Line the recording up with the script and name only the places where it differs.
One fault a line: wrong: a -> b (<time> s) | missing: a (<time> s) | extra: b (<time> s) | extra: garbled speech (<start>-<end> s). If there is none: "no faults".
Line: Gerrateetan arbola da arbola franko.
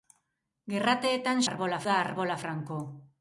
no faults